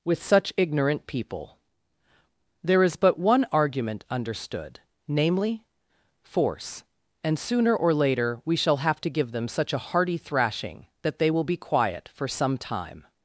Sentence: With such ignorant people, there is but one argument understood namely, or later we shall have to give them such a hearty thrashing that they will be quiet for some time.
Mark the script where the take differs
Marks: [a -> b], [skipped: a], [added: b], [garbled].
With such ignorant people, there is but one argument understood namely, [added: force and sooner] or later we shall have to give them such a hearty thrashing that they will be quiet for some time.